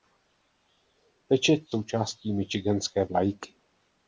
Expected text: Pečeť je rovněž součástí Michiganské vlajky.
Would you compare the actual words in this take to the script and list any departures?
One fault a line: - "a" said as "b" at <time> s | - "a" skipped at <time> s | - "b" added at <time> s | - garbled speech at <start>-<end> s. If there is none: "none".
- "je rovněž" skipped at 1.8 s